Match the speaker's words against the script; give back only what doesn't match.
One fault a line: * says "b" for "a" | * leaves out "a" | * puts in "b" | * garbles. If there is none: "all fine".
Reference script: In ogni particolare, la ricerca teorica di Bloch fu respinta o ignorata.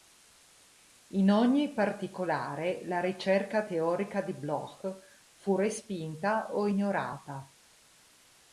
all fine